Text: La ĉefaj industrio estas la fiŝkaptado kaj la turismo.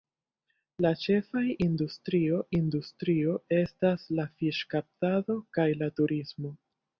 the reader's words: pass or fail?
fail